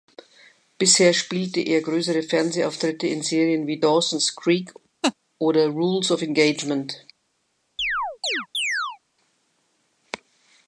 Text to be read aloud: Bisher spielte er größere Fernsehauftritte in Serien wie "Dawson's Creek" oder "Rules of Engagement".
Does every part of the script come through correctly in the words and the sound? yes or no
no